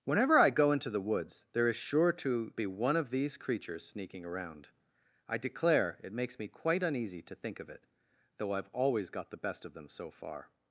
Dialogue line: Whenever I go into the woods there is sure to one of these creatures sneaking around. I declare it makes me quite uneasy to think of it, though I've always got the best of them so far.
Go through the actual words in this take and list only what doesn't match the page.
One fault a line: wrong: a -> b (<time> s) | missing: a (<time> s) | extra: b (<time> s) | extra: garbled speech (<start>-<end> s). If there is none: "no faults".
extra: be (2.5 s)